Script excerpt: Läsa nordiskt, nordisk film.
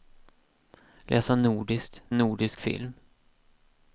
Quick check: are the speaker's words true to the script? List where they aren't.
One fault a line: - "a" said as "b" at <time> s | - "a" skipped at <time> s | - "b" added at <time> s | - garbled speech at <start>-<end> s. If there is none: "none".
none